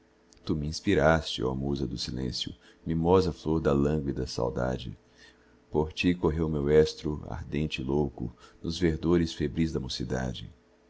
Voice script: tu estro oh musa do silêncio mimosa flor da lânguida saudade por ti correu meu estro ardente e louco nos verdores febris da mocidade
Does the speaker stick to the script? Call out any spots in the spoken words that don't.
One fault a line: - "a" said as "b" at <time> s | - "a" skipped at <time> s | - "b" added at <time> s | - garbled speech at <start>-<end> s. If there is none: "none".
- "estro" said as "minspiraste" at 0.6 s